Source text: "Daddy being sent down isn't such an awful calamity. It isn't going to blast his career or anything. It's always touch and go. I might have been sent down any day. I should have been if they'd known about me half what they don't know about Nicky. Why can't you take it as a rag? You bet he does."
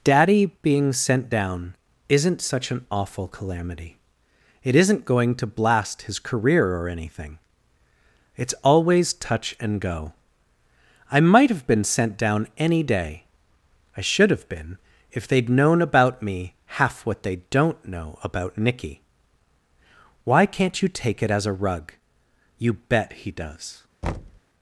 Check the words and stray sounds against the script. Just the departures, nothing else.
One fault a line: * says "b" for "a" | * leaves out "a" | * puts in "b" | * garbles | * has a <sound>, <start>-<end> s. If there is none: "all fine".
* says "rug" for "rag"
* has a thud, 24.0-24.4 s